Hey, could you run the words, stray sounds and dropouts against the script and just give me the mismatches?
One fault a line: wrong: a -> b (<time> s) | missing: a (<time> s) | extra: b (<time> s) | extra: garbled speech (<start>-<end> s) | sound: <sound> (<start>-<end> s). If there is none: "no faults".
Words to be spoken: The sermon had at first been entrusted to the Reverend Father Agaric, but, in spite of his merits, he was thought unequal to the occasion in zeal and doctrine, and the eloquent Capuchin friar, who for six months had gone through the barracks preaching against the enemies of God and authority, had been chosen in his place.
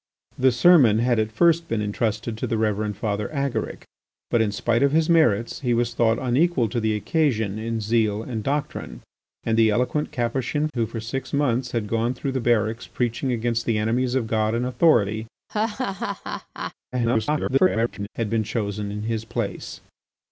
missing: friar (10.7 s)
sound: laugh (15.5-16.7 s)
extra: garbled speech (16.9-18.1 s)